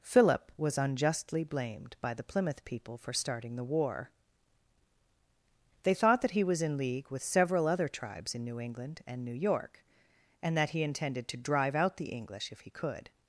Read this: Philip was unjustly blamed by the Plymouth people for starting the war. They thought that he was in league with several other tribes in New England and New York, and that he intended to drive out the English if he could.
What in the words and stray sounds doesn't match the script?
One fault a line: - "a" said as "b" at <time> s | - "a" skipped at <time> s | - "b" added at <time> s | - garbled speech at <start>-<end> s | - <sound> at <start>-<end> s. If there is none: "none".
none